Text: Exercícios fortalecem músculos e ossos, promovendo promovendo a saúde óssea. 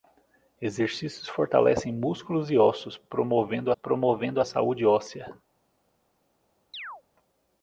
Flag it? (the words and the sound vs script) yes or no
yes